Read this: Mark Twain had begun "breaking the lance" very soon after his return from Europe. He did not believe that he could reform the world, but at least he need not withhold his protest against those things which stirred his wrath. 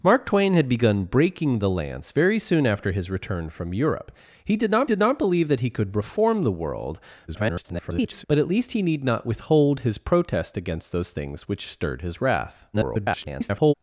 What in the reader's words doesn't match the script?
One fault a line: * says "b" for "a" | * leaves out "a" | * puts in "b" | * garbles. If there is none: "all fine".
* puts in "did not"
* garbles
* garbles